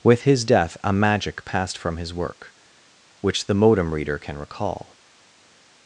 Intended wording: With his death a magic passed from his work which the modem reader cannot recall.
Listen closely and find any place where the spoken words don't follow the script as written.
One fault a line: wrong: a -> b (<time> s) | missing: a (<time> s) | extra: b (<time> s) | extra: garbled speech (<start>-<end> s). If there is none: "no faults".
wrong: cannot -> can (4.2 s)